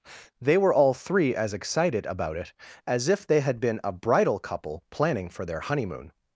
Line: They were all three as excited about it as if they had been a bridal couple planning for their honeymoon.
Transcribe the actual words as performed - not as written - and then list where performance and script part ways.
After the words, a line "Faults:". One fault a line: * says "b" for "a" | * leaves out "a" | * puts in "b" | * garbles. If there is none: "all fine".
They were all three as excited about it as if they had been a bridal couple planning for their honeymoon.
Faults:
all fine